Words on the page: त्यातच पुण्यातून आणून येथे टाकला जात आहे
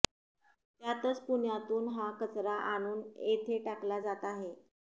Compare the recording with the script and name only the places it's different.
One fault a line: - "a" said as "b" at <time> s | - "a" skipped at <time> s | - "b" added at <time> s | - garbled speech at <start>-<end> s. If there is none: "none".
- "हा कचरा" added at 1.9 s